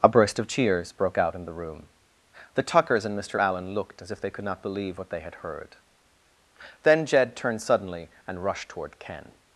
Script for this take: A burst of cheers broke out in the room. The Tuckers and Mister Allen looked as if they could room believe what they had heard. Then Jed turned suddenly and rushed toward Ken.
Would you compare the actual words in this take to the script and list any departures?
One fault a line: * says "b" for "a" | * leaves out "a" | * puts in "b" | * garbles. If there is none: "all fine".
* says "not" for "room"